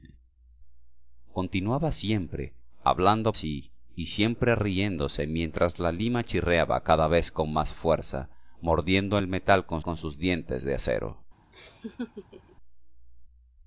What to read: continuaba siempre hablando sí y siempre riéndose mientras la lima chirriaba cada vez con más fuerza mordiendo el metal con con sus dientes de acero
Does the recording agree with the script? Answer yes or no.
yes